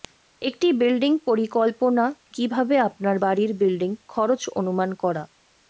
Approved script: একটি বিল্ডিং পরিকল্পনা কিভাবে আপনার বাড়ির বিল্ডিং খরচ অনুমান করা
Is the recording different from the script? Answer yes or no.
no